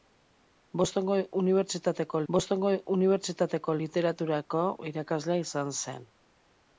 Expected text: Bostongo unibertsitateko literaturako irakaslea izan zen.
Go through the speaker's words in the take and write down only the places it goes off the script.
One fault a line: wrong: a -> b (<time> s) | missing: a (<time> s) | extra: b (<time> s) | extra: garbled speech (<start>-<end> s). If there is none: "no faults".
extra: bostongo unibertsitateko (2.3 s)